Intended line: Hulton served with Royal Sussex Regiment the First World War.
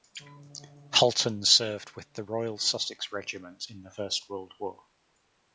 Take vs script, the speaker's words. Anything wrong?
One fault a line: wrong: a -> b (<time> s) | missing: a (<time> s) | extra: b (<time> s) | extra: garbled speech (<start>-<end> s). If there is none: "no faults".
extra: the (2.1 s)
extra: in (3.7 s)